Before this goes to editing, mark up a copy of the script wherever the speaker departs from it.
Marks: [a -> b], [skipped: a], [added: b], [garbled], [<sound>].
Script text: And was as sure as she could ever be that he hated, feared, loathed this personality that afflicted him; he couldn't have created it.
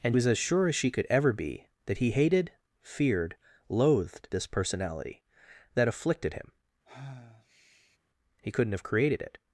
And was as sure as she could ever be that he hated, feared, loathed this personality that afflicted him; [sigh] he couldn't have created it.